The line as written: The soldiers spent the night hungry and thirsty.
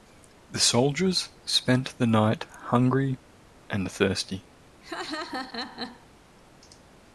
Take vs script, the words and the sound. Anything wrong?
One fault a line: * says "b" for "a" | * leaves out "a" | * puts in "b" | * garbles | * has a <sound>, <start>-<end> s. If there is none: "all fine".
* has a laugh, 4.8-6.1 s